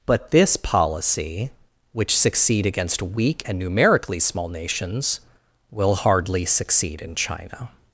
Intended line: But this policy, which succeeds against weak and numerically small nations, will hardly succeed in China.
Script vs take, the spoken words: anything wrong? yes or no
yes